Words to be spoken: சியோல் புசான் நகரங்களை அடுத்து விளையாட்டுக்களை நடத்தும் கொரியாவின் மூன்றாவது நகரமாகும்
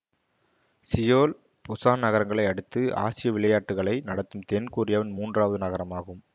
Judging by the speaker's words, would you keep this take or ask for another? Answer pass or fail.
fail